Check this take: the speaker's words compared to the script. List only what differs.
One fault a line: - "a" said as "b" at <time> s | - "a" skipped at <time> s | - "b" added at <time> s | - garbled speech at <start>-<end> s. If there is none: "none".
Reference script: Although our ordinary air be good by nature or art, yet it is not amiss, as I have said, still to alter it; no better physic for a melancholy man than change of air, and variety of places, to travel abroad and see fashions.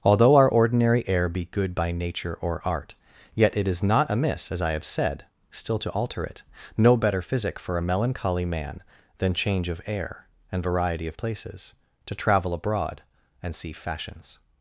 none